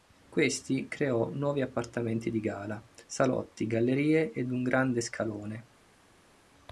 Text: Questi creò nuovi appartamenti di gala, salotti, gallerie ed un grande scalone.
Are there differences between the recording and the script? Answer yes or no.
no